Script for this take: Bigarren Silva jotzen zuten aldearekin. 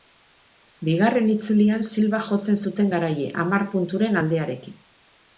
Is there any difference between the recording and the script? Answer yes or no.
yes